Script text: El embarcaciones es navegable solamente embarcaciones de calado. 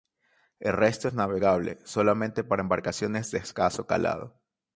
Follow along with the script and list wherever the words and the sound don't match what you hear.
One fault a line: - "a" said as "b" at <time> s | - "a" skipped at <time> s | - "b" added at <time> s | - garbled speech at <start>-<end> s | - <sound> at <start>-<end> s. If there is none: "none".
- "embarcaciones" said as "resto" at 0.7 s
- "para" added at 2.4 s
- "escaso" added at 3.4 s